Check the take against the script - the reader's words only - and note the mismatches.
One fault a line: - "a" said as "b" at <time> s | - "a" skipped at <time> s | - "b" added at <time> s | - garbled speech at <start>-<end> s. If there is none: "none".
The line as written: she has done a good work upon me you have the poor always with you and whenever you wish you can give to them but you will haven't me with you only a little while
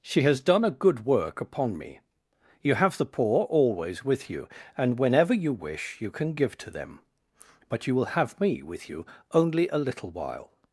- "haven't" said as "have" at 8.1 s